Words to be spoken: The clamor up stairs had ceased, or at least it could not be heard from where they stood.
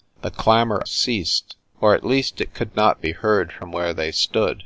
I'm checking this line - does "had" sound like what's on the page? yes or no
no